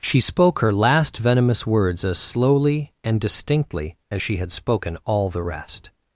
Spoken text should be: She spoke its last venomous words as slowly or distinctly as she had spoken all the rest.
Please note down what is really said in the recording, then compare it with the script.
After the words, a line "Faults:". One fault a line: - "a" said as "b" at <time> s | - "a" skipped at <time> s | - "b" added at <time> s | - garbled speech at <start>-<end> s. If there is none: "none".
She spoke her last venomous words as slowly and distinctly as she had spoken all the rest.
Faults:
- "its" said as "her" at 0.6 s
- "or" said as "and" at 3.0 s